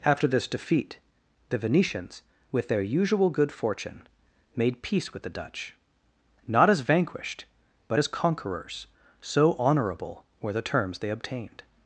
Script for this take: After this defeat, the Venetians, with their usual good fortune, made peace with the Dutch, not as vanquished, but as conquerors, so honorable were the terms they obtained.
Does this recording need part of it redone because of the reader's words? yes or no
no